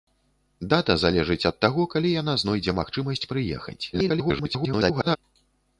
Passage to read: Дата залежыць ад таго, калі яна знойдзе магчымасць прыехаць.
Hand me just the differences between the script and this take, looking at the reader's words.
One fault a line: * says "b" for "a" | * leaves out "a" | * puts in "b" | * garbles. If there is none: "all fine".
* garbles